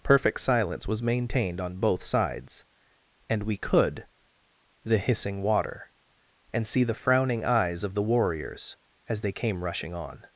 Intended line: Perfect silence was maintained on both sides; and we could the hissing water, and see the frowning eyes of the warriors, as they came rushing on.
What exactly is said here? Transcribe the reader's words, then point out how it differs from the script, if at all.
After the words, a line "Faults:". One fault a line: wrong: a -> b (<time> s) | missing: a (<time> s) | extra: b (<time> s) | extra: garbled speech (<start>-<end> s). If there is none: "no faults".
Perfect silence was maintained on both sides; and we could the hissing water, and see the frowning eyes of the warriors, as they came rushing on.
Faults:
no faults